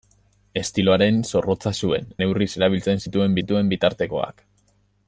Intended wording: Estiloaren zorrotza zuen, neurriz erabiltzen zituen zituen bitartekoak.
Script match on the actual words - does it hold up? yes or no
yes